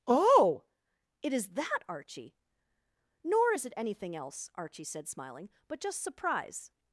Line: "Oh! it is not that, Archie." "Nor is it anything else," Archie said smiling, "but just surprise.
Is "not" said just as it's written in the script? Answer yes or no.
no